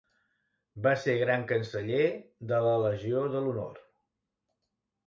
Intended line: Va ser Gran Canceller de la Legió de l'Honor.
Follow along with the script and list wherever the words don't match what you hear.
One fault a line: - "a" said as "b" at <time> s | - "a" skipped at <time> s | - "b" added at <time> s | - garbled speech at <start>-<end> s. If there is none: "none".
none